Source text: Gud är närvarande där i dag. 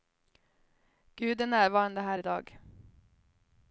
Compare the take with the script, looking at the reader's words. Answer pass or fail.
fail